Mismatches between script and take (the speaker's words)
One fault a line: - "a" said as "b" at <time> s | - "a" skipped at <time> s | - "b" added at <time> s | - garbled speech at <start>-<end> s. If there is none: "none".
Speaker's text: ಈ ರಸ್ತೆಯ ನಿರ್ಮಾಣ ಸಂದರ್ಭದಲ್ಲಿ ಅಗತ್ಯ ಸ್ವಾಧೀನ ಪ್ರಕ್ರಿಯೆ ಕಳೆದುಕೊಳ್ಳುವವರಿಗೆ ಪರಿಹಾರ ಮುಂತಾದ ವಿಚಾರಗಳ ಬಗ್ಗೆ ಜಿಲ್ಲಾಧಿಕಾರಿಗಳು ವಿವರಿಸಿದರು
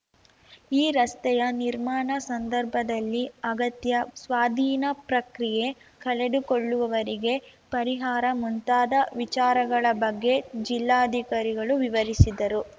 none